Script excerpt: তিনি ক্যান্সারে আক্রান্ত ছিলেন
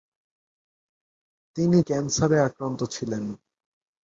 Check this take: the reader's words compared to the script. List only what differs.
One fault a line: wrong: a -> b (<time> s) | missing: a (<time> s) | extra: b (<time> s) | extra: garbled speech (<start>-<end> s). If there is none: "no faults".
no faults